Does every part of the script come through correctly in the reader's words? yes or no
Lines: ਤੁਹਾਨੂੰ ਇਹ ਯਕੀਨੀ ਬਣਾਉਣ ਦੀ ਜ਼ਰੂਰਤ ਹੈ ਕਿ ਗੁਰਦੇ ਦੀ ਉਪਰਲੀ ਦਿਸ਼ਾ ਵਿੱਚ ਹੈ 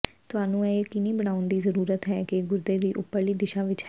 yes